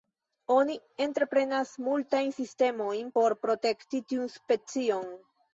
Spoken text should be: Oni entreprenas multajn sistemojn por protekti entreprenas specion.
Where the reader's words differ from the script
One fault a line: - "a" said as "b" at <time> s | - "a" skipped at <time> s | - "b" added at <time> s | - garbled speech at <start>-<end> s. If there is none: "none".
- "entreprenas" said as "tiun" at 4.1 s